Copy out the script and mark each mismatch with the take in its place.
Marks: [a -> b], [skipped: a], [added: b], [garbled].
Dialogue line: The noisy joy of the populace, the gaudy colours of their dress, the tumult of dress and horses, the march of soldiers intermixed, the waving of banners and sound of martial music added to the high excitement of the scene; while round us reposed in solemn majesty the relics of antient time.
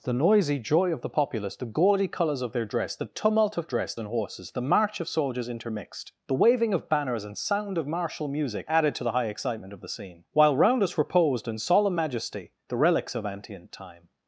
The noisy joy of the populace, the gaudy colours of their dress, the tumult of dress and horses, the march of soldiers intermixed, the waving of banners and sound of martial music added to the high excitement of the scene; while round us reposed in solemn majesty the relics of antient time.